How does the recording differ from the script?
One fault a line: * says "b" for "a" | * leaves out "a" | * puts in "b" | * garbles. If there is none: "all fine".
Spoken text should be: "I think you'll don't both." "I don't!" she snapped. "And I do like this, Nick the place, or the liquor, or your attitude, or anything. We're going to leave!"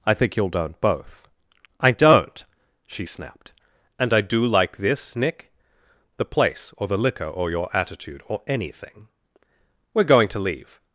all fine